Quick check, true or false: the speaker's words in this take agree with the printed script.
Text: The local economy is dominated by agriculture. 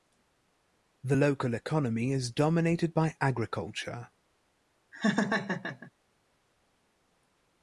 true